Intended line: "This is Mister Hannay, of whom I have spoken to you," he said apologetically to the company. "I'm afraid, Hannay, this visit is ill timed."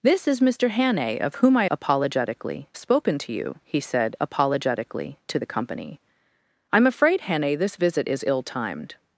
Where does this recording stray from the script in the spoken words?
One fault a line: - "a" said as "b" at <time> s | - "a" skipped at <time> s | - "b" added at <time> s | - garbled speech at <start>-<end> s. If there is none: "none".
- "have" said as "apologetically" at 1.7 s